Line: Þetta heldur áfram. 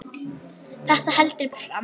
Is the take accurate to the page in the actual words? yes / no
yes